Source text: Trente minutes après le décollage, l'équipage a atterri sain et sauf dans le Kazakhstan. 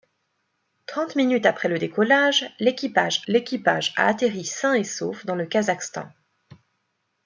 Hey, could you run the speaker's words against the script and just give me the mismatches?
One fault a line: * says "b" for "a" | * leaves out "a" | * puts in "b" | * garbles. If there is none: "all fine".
* puts in "l'équipage"